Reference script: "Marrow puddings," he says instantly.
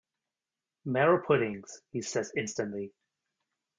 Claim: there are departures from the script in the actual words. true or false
false